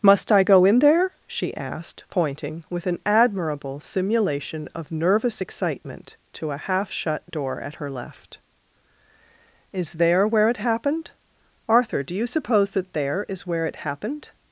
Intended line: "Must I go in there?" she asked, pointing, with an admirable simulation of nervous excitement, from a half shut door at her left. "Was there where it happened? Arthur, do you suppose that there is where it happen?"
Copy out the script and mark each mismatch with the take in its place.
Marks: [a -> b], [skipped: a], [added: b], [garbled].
"Must I go in there?" she asked, pointing, with an admirable simulation of nervous excitement, [from -> to] a half shut door at her left. ["Was -> Is] there where it happened? Arthur, do you suppose that there is where it [happen?" -> happened]